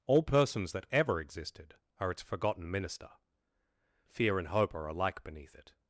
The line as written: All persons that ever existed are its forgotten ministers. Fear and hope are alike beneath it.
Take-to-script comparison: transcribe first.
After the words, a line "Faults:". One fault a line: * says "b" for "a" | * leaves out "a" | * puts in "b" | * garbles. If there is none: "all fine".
All persons that ever existed are its forgotten minister. Fear and hope are alike beneath it.
Faults:
* says "minister" for "ministers"